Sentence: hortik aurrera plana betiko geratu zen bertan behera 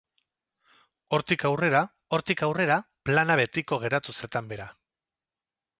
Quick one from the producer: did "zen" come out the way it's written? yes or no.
no